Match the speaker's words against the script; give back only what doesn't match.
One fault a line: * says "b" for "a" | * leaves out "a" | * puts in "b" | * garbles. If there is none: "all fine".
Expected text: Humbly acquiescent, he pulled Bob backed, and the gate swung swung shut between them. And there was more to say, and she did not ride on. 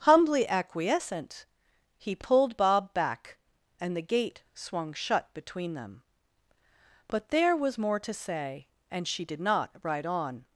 * says "back" for "backed"
* leaves out "swung"
* says "But" for "And"